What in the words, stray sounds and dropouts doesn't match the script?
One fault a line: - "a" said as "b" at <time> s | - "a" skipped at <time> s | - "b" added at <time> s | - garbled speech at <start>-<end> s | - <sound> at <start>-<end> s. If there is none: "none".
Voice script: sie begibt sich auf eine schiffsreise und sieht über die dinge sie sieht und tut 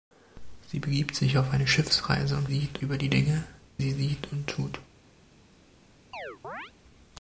- chirp at 6.1-6.7 s